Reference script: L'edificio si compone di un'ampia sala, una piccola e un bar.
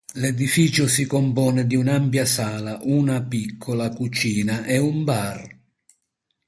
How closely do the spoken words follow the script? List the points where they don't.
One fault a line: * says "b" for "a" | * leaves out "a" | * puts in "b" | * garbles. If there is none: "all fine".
* puts in "cucina"